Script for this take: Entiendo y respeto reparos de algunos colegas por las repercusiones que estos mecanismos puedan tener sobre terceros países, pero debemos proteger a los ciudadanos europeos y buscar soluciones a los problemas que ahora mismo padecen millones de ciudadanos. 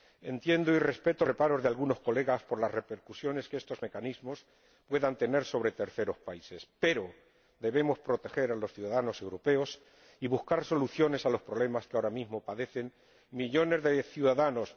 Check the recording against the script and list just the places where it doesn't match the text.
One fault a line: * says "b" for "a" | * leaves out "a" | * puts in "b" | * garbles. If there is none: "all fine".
all fine